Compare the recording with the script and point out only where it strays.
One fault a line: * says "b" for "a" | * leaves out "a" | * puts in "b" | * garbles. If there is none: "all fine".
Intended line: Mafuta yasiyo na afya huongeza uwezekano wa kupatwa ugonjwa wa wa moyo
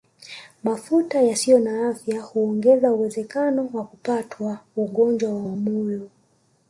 all fine